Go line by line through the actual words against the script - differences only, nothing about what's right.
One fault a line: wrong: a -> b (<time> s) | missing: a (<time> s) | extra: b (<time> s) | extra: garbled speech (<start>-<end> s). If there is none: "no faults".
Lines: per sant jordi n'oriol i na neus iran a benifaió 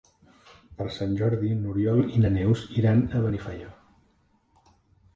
no faults